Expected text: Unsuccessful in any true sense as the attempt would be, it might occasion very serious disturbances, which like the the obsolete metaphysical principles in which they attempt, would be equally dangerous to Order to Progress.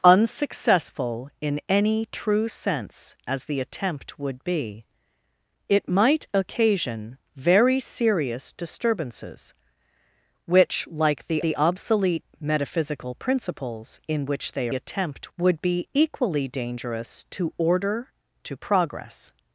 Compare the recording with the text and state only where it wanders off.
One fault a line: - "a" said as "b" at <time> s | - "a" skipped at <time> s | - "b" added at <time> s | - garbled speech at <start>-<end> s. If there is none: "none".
none